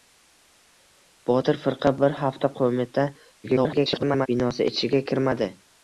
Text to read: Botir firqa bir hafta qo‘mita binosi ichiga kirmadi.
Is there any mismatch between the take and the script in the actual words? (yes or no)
yes